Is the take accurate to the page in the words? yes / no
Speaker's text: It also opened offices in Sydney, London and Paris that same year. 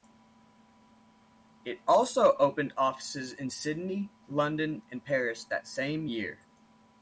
yes